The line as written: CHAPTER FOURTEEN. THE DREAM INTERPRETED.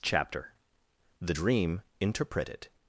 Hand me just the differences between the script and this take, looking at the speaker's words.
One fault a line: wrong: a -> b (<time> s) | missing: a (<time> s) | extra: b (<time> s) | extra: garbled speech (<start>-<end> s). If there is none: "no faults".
missing: FOURTEEN (0.5 s)